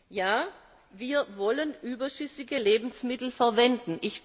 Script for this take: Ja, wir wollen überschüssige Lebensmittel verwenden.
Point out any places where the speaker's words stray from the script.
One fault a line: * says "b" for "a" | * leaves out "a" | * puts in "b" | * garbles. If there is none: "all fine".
all fine